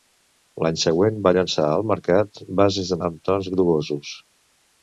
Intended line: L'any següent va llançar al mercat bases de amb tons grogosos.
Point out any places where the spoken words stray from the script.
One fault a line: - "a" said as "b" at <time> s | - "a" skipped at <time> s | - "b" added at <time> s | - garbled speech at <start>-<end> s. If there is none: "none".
none